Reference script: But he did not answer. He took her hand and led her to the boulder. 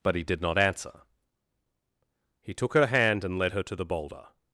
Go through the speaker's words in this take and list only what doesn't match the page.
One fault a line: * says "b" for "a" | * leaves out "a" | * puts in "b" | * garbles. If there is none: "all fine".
all fine